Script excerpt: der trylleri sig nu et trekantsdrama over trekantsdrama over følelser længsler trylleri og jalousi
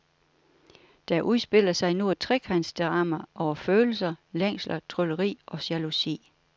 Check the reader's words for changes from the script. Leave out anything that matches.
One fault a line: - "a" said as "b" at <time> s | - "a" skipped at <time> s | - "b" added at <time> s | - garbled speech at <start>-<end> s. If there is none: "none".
- "trylleri" said as "udspiller" at 1.2 s
- "trekantsdrama over" skipped at 3.5 s